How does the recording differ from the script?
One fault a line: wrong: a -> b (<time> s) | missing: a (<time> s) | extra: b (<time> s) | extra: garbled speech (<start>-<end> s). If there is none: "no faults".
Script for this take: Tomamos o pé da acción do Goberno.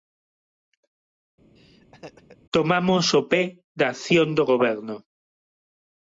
no faults